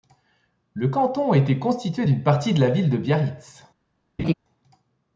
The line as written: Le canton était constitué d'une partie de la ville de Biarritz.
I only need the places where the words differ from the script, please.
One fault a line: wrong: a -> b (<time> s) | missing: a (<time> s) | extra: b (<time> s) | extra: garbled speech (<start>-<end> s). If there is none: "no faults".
no faults